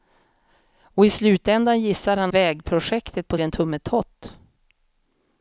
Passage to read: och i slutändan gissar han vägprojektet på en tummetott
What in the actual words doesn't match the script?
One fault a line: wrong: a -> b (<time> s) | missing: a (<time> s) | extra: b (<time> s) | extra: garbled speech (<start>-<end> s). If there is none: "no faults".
no faults